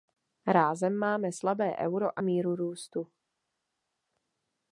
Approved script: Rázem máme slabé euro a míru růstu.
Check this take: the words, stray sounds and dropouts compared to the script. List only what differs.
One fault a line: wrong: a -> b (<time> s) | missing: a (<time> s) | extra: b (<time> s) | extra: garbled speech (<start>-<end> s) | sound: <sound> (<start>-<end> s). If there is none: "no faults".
no faults